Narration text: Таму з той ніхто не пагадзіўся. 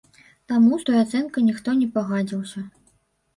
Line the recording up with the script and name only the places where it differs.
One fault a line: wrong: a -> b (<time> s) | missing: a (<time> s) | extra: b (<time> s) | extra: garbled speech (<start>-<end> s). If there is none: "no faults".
extra: ацэнкай (1.0 s)